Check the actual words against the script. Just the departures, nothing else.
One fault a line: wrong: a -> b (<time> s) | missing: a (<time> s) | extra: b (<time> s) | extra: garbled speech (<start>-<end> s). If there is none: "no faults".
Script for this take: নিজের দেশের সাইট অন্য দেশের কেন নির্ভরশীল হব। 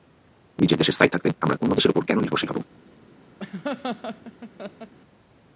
extra: থাকতে আমরা (1.1 s)
extra: ওপর (1.9 s)